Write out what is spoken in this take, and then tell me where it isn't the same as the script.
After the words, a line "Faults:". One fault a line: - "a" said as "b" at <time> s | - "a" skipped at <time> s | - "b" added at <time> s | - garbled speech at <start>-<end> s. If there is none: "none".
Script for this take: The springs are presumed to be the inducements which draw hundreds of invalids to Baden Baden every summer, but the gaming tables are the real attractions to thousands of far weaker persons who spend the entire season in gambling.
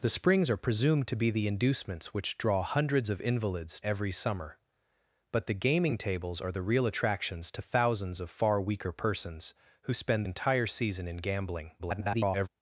The springs are presumed to be the inducements which draw hundreds of invalids every summer, but the gaming tables are the real attractions to thousands of far weaker persons who spend entire season in gambling. [garbled]
Faults:
- "to Baden Baden" skipped at 3.8 s
- "the" skipped at 10.3 s
- garbled speech at 11.8-12.5 s